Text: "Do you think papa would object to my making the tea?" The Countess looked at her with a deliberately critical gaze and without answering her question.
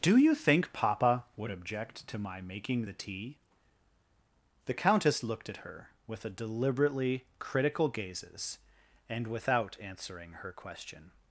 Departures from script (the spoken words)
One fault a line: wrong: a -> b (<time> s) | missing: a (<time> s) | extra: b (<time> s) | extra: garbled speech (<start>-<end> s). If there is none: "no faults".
wrong: gaze -> gazes (7.9 s)